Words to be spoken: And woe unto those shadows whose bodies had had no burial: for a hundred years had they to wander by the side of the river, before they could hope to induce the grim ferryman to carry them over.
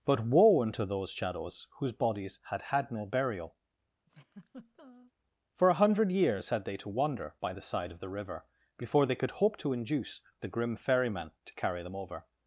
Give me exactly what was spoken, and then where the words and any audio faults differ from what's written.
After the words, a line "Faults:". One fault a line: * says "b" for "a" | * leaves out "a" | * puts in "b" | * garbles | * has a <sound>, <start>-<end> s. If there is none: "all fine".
But woe unto those shadows whose bodies had had no burial: for a hundred years had they to wander by the side of the river, before they could hope to induce the grim ferryman to carry them over.
Faults:
* says "But" for "And"
* has a laugh, 4.1-5.1 s